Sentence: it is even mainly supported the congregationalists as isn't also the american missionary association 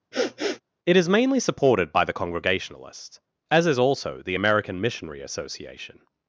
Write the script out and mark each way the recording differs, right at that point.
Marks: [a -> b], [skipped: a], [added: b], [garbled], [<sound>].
[sniff] it is [skipped: even] mainly supported [added: by] the congregationalists as [isn't -> is] also the american missionary association